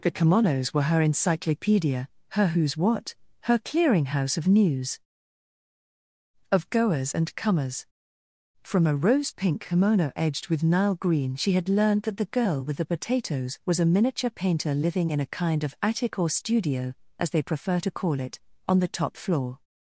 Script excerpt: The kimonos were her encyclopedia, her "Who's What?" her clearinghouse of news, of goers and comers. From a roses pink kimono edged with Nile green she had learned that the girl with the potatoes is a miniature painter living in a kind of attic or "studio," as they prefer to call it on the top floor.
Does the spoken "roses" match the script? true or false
false